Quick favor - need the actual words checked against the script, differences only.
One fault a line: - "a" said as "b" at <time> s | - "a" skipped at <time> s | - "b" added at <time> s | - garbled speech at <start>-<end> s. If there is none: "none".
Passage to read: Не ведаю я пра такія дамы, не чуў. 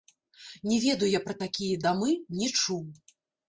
none